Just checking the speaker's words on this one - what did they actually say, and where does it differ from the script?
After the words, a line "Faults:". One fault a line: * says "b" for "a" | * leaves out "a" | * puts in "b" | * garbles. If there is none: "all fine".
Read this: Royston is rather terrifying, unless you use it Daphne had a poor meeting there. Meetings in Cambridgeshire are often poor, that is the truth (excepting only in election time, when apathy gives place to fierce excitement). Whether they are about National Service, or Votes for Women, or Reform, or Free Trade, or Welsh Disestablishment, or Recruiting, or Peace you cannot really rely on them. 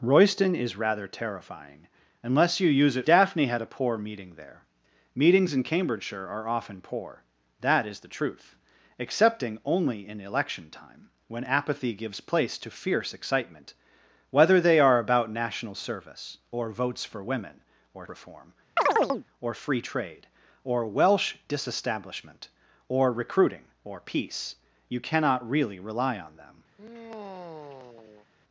Royston is rather terrifying, unless you use it Daphne had a poor meeting there. Meetings in Cambridgeshire are often poor, that is the truth (excepting only in election time, when apathy gives place to fierce excitement). Whether they are about National Service, or Votes for Women, or Reform, or Free Trade, or Welsh Disestablishment, or Recruiting, or Peace you cannot really rely on them.
Faults:
all fine